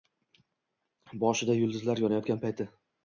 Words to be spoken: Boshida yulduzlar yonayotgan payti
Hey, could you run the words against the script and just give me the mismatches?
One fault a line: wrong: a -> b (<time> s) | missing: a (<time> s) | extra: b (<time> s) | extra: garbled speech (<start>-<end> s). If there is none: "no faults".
no faults